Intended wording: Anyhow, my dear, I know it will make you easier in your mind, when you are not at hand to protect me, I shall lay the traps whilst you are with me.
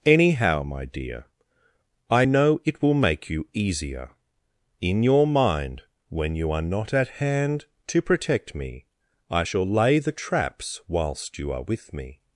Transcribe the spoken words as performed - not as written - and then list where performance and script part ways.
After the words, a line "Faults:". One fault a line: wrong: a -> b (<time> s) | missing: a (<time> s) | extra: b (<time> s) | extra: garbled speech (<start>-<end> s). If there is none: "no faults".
Anyhow, my dear, I know it will make you easier in your mind, when you are not at hand to protect me, I shall lay the traps whilst you are with me.
Faults:
no faults